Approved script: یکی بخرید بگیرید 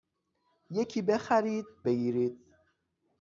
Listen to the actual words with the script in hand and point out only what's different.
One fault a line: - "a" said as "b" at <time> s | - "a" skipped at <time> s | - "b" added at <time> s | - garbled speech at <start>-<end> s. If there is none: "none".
none